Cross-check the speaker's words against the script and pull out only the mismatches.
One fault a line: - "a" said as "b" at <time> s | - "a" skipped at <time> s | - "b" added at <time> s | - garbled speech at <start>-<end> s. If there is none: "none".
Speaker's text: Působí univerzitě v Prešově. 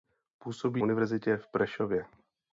none